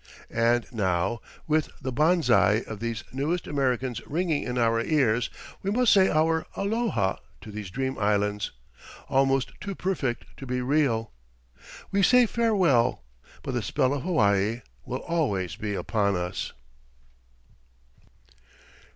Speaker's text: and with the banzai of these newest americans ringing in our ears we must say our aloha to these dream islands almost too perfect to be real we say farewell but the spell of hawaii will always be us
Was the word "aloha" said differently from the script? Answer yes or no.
no